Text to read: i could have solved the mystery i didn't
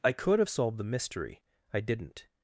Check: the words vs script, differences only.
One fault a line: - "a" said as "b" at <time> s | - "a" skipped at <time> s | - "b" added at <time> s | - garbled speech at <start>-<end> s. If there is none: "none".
none